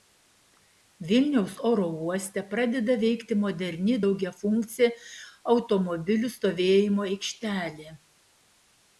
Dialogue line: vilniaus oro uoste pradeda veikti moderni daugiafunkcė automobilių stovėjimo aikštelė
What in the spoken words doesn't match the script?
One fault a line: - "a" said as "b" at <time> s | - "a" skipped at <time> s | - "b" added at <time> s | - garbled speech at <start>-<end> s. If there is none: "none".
none